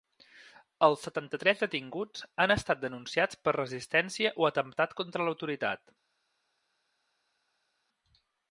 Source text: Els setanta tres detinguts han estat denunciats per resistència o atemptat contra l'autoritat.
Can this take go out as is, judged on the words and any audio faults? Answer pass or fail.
pass